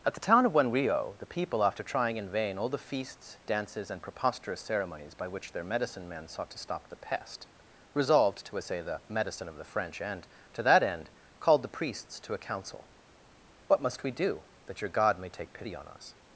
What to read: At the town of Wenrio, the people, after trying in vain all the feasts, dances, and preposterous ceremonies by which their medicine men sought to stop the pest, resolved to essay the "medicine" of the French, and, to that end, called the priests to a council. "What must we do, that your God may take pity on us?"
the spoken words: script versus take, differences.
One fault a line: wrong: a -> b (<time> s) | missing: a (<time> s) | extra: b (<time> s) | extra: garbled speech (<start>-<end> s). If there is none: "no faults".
no faults